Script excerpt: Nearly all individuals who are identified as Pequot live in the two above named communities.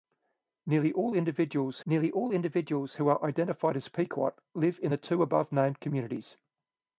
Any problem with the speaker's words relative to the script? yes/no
yes